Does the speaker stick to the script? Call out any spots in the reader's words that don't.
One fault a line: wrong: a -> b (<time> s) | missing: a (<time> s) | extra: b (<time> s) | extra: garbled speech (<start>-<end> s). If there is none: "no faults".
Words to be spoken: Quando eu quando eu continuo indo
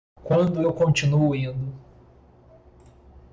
missing: quando eu (0.7 s)